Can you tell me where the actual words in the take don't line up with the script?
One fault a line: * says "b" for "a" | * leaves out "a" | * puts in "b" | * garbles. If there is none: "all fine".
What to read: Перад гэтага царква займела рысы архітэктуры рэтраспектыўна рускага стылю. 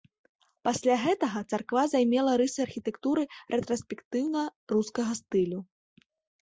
* says "Пасля" for "Перад"